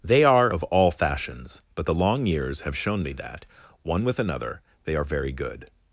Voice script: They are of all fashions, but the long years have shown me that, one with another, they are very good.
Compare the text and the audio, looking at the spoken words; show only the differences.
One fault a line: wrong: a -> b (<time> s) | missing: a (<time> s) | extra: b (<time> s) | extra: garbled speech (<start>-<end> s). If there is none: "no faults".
no faults